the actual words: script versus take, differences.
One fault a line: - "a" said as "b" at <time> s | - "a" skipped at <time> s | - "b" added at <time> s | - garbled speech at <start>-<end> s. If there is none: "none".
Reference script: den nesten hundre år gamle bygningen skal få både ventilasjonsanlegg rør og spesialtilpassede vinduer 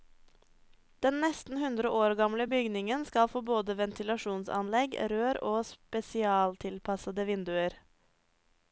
none